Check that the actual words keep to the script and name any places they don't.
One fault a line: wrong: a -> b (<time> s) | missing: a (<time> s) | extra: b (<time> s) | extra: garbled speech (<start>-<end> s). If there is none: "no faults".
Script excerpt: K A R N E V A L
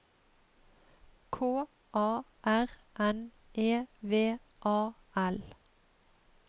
no faults